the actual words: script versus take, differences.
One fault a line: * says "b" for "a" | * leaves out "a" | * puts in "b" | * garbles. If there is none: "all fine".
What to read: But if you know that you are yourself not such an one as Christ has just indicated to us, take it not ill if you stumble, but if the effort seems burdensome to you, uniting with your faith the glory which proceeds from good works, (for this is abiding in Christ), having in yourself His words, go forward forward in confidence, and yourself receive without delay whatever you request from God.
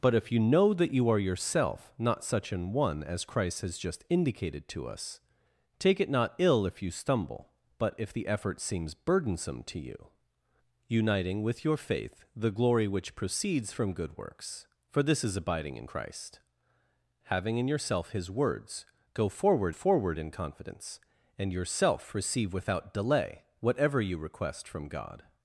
all fine